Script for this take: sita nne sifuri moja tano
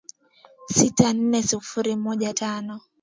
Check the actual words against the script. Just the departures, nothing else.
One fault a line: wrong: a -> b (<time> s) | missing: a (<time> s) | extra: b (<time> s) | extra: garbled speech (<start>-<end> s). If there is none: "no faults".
no faults